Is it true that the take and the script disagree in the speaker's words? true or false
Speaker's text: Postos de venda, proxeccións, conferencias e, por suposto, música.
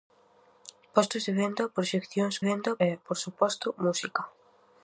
true